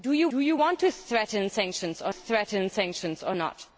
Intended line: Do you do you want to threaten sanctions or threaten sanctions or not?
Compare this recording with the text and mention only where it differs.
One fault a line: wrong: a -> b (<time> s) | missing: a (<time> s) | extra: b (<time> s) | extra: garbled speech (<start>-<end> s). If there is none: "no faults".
no faults